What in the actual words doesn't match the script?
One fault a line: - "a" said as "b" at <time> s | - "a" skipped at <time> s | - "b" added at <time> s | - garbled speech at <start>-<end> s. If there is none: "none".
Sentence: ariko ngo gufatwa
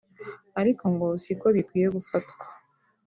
- "siko bikwiye" added at 1.2 s